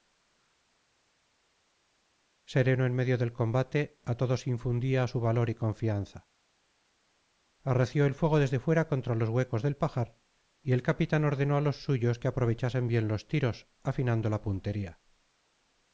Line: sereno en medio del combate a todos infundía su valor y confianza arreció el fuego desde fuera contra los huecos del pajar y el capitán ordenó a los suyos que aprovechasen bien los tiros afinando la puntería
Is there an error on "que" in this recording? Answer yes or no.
no